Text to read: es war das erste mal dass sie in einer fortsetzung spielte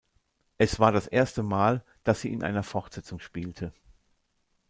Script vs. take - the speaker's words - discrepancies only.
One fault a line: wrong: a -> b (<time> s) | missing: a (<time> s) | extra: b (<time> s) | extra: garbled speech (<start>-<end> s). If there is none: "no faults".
no faults